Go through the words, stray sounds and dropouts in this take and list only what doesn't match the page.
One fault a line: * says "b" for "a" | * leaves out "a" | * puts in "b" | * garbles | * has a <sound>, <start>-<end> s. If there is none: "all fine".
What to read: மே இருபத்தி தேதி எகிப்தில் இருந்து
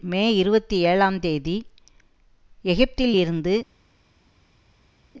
* puts in "ஏழாம்"